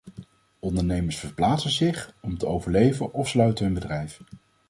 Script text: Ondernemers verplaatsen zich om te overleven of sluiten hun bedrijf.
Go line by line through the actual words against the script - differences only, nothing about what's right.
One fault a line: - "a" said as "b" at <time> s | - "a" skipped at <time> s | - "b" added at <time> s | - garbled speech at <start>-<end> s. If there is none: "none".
none